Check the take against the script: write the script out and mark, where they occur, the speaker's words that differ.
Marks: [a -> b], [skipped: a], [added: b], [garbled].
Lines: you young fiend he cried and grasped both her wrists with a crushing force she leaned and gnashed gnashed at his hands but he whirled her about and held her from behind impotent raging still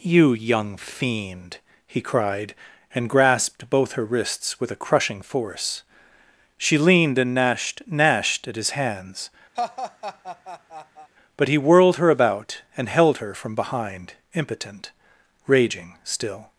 you young fiend he cried and grasped both her wrists with a crushing force she leaned and gnashed gnashed at his hands but he whirled her about and held her from behind impotent raging still